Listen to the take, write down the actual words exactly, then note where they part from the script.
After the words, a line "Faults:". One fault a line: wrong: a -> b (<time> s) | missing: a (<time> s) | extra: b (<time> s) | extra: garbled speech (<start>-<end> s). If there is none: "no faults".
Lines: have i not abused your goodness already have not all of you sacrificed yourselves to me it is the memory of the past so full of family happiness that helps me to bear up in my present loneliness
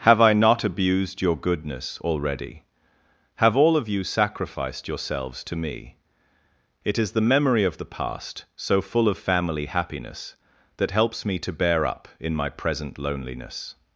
have i not abused your goodness already have all of you sacrificed yourselves to me it is the memory of the past so full of family happiness that helps me to bear up in my present loneliness
Faults:
missing: not (3.5 s)